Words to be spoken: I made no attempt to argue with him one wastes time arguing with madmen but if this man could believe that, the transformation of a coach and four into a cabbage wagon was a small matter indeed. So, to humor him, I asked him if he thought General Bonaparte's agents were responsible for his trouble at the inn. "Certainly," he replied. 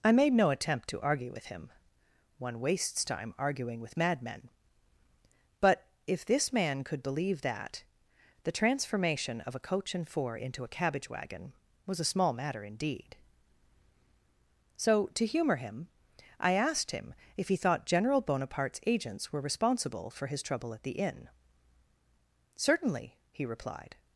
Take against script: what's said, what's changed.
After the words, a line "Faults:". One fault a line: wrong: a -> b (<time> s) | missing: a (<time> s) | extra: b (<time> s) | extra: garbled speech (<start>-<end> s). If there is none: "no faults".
I made no attempt to argue with him one wastes time arguing with madmen but if this man could believe that, the transformation of a coach and four into a cabbage wagon was a small matter indeed. So, to humor him, I asked him if he thought General Bonaparte's agents were responsible for his trouble at the inn. "Certainly," he replied.
Faults:
no faults